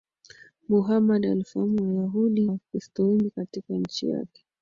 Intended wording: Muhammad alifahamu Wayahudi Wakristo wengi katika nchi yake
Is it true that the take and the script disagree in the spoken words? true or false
false